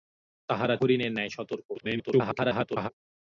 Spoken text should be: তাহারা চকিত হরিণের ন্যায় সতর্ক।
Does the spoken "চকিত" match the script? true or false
false